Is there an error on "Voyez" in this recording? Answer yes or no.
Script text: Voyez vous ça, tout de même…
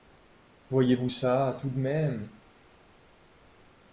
no